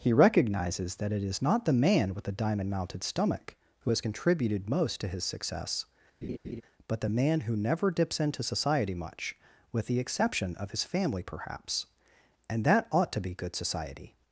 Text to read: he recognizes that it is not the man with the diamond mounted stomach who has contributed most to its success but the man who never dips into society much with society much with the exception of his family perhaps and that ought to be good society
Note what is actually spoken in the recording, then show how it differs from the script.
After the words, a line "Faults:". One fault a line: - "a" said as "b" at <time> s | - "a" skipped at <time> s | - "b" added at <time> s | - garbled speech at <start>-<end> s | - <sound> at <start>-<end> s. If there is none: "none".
he recognizes that it is not the man with the diamond mounted stomach who has contributed most to his success but the man who never dips into society much with the exception of his family perhaps and that ought to be good society
Faults:
- "its" said as "his" at 5.1 s
- laugh at 6.2-6.6 s
- "society much with" skipped at 9.9 s